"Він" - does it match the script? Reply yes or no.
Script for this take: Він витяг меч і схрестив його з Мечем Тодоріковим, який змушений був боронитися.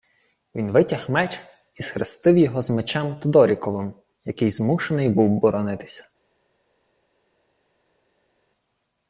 yes